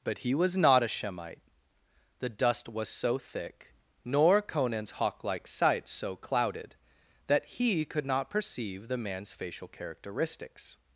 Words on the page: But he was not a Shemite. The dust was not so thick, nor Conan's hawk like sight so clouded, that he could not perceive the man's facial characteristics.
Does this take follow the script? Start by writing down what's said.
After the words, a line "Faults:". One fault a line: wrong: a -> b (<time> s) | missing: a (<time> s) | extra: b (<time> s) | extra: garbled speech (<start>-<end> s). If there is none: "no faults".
But he was not a Shemite. The dust was so thick, nor Conan's hawk like sight so clouded, that he could not perceive the man's facial characteristics.
Faults:
missing: not (2.9 s)